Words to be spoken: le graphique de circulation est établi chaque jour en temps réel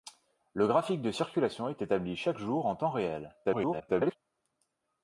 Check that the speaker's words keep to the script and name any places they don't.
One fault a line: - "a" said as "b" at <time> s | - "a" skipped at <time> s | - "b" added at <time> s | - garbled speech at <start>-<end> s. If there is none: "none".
- garbled speech at 3.4-4.2 s